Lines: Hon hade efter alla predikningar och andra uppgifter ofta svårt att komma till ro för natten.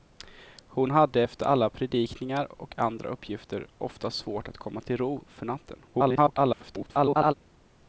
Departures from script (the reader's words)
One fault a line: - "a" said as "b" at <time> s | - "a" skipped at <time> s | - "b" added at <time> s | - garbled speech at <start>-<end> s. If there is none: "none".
- garbled speech at 5.9-7.3 s